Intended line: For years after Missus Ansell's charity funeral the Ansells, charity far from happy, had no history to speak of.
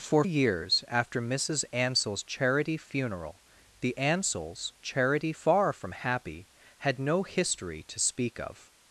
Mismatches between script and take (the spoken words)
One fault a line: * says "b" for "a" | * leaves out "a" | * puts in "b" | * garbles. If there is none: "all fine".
all fine